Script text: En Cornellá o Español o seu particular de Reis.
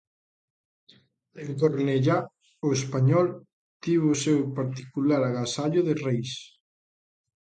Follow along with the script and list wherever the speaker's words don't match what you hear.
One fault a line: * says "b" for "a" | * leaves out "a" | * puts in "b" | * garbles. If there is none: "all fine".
* puts in "tivo"
* puts in "agasallo"